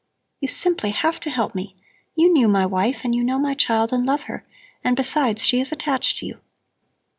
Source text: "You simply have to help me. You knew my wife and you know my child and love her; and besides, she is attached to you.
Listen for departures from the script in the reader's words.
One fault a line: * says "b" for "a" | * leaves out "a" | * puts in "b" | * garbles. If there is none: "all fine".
all fine